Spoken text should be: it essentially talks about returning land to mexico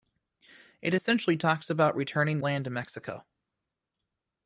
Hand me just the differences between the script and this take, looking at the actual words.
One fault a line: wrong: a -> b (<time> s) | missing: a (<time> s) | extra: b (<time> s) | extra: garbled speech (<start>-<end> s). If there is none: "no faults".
no faults